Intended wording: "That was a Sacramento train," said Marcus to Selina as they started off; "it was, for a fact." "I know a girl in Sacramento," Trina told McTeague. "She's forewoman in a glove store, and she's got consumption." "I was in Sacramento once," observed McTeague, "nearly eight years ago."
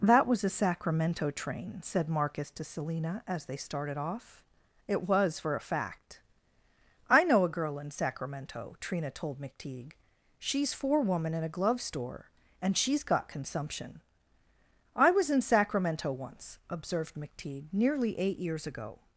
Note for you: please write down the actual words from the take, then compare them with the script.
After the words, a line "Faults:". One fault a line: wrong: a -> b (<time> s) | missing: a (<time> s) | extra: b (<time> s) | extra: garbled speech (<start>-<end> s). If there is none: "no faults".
"That was a Sacramento train," said Marcus to Selina as they started off; "it was, for a fact." "I know a girl in Sacramento," Trina told McTeague. "She's forewoman in a glove store, and she's got consumption." "I was in Sacramento once," observed McTeague, "nearly eight years ago."
Faults:
no faults